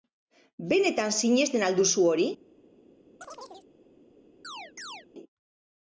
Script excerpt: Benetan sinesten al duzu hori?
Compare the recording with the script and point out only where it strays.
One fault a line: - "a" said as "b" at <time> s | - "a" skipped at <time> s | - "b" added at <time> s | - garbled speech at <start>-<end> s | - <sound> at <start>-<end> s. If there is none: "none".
- chirp at 3.2-3.7 s
- chirp at 4.4-5.1 s